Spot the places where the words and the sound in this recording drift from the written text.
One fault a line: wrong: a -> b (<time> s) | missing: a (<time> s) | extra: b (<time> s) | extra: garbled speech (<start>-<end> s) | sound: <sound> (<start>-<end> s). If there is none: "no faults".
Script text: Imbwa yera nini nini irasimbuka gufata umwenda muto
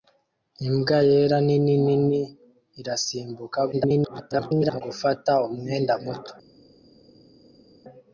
extra: garbled speech (3.7-4.8 s)